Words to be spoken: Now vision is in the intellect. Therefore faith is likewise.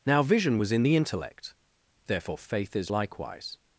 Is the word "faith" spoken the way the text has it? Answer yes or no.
yes